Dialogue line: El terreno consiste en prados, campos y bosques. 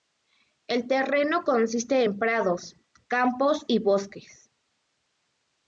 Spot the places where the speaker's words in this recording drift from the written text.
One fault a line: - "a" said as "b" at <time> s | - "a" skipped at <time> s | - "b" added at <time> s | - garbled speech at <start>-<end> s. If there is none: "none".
none